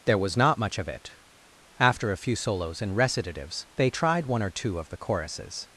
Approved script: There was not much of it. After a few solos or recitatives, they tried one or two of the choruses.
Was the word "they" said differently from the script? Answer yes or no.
no